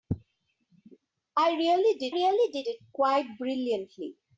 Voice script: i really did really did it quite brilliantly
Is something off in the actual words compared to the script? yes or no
no